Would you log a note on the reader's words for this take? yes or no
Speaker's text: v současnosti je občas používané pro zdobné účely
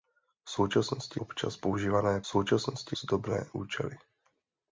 yes